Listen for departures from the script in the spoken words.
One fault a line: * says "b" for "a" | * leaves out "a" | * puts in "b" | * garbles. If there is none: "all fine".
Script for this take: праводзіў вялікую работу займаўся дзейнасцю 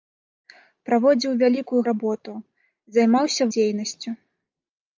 all fine